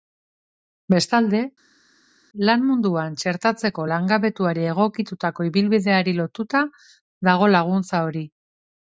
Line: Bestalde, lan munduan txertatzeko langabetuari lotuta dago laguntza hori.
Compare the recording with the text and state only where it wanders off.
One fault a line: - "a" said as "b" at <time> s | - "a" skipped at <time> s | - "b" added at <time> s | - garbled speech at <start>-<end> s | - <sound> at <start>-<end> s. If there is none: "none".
- "egokitutako ibilbideari" added at 4.7 s